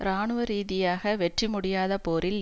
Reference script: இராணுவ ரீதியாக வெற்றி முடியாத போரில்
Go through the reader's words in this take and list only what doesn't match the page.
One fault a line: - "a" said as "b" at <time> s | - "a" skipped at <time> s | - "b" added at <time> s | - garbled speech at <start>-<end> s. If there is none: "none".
none